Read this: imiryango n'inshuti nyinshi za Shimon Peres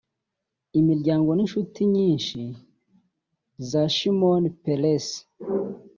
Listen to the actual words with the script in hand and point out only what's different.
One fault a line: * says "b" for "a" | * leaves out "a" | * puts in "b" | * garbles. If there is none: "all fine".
all fine